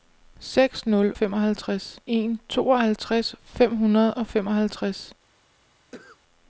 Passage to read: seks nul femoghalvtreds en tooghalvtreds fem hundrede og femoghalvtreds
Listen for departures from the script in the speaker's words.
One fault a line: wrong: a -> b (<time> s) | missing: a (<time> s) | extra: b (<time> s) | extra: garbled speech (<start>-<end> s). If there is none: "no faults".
no faults